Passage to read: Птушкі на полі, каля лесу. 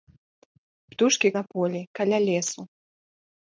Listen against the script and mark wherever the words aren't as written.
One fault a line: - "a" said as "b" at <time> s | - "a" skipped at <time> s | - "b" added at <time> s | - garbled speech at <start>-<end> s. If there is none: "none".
none